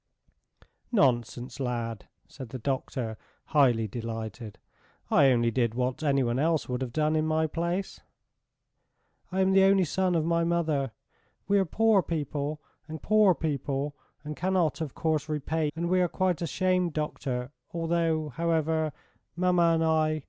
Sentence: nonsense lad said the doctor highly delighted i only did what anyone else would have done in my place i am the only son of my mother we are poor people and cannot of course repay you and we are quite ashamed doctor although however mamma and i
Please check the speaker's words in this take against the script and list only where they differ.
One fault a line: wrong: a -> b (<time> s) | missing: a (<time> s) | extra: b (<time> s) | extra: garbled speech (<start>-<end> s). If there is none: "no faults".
extra: poor people and (13.0 s)
missing: you (15.7 s)